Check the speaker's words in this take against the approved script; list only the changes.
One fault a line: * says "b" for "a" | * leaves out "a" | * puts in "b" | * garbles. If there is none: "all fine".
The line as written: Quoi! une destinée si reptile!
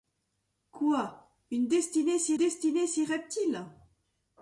* puts in "destinée si"